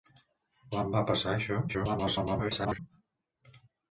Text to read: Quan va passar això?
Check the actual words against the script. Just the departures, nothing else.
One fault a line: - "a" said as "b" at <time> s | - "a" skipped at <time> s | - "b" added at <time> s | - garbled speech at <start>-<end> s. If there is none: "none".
- garbled speech at 1.7-2.8 s